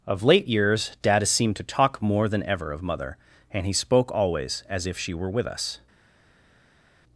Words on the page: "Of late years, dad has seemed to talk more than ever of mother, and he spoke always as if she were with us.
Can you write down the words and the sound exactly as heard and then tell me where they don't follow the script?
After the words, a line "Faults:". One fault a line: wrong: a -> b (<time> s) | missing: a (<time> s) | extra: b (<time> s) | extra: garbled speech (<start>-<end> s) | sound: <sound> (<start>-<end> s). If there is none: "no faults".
"Of late years, dad has seemed to talk more than ever of mother, and he spoke always as if she were with us.
Faults:
no faults